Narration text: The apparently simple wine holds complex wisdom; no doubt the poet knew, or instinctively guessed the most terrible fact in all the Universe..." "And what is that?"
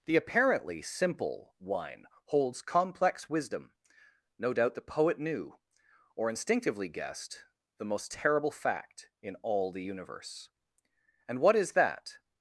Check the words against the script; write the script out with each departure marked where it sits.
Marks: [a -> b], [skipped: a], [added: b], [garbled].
The apparently simple wine holds complex wisdom; no doubt the poet knew, or instinctively guessed the most terrible fact in all the Universe..." "And what is that?"